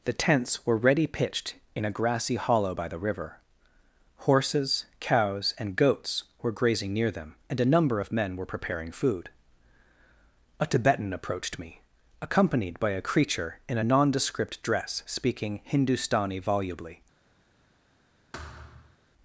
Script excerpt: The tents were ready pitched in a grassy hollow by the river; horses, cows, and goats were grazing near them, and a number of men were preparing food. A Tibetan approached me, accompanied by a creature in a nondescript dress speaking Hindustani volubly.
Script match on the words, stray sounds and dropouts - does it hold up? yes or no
no